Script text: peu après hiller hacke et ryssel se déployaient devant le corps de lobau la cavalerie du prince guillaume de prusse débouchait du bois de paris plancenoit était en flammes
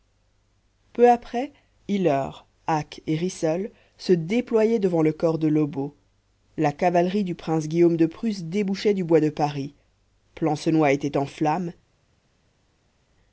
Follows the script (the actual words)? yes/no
yes